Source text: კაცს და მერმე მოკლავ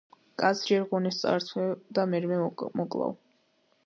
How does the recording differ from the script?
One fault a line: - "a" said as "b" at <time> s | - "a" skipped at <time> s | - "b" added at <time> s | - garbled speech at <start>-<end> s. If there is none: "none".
- "ჯერ ღონეს წაართმევ" added at 0.7 s